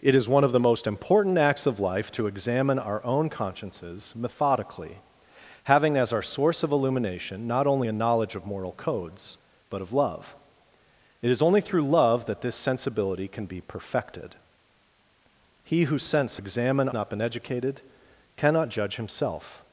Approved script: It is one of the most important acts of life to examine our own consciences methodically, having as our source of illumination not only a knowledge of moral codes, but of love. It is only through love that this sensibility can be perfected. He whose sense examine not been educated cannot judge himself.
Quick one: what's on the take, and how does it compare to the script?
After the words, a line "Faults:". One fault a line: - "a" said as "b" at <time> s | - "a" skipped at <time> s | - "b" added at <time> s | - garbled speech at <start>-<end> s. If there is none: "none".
It is one of the most important acts of life to examine our own consciences methodically, having as our source of illumination not only a knowledge of moral codes, but of love. It is only through love that this sensibility can be perfected. He whose sense examine not been educated cannot judge himself.
Faults:
none